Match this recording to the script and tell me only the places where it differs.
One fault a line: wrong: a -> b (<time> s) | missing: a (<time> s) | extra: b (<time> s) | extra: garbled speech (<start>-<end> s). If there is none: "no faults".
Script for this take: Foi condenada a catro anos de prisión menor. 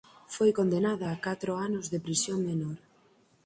no faults